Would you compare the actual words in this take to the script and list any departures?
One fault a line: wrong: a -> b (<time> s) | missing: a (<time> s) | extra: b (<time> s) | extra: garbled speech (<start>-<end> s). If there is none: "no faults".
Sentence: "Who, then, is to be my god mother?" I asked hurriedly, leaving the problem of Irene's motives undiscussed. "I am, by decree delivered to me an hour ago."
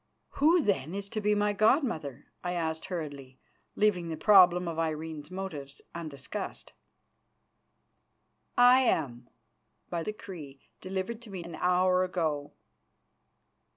no faults